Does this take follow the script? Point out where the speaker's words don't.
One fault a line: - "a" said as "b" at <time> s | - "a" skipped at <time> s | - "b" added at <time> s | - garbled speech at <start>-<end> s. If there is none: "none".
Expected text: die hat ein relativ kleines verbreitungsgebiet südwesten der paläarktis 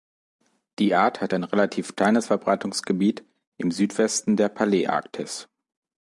- "art" added at 0.9 s
- "im" added at 3.6 s